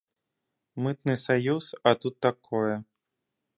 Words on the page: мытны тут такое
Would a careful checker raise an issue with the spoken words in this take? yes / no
yes